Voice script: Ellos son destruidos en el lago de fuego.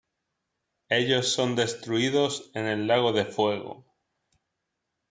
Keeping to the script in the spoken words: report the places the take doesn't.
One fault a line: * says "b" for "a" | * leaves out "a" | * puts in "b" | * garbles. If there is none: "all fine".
all fine